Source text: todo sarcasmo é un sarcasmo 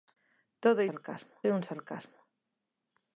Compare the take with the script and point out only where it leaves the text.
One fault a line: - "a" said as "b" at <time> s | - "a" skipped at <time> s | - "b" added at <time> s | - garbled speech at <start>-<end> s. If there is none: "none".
none